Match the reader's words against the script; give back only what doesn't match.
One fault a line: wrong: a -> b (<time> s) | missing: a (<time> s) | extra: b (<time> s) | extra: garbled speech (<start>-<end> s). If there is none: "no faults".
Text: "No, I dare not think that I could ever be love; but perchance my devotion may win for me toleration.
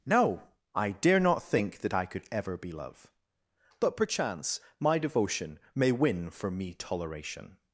no faults